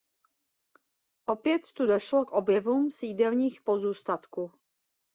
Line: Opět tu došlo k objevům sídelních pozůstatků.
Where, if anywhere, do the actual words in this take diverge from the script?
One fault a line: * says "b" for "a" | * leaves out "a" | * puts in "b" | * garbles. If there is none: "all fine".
all fine